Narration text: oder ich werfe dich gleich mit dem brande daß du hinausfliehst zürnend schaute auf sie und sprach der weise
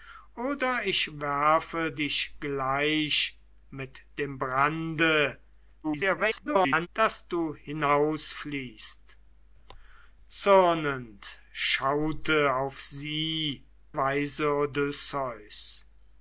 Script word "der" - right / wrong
wrong